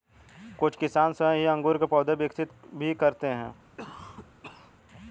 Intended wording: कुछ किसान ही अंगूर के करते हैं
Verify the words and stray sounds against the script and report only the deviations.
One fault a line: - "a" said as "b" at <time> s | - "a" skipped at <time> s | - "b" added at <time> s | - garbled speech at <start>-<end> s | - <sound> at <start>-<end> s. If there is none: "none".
- "स्वयं" added at 1.1 s
- "पौधे विकसित भी" added at 1.8 s
- cough at 3.8-4.7 s